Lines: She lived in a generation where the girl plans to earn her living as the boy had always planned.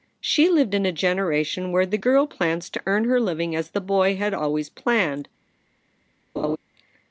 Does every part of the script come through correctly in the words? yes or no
yes